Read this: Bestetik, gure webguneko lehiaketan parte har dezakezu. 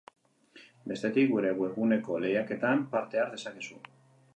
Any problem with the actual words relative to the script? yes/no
no